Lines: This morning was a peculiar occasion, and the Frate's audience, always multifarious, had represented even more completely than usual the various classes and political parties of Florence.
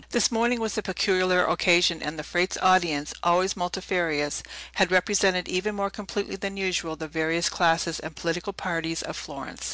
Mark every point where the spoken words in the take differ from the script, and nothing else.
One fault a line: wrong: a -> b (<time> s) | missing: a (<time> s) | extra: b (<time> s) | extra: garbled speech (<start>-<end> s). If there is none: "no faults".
no faults